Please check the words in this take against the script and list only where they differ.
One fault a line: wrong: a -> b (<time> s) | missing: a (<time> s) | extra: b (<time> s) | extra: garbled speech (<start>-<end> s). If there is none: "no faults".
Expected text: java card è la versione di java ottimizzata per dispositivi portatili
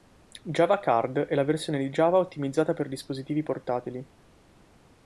no faults